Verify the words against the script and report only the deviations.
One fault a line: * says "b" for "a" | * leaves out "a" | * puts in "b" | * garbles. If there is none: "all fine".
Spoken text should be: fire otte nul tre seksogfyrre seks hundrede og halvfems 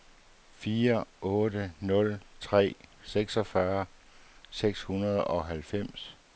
all fine